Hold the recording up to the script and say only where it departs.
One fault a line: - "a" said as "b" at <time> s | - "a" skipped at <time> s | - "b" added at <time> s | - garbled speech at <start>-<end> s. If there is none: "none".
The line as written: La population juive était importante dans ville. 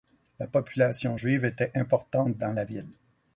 - "la" added at 2.5 s